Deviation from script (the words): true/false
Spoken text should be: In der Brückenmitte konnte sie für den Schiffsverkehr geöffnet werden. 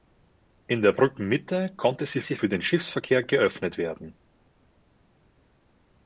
true